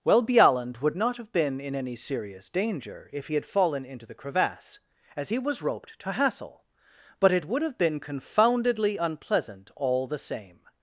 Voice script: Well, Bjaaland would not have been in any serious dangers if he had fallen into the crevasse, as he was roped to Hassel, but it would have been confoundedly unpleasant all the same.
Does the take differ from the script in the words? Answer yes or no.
yes